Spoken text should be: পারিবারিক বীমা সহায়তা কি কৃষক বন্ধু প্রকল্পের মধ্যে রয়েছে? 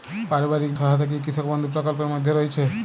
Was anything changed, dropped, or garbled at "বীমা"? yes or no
yes